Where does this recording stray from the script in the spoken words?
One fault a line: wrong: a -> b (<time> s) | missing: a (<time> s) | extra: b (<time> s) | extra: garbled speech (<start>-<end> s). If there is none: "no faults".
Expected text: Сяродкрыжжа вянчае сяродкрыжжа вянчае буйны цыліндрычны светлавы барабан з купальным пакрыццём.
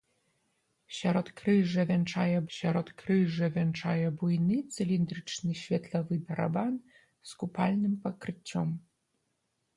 no faults